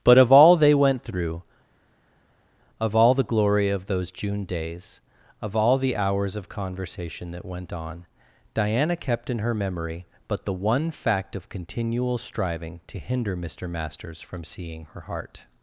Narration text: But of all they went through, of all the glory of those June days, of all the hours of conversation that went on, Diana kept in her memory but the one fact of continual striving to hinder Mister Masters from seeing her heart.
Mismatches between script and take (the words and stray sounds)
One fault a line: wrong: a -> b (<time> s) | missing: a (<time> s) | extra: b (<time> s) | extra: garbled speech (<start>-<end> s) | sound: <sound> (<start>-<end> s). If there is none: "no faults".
no faults